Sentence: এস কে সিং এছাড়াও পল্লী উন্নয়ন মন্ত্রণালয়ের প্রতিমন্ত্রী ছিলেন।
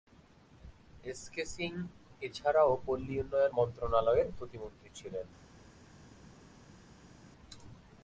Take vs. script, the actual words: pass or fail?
pass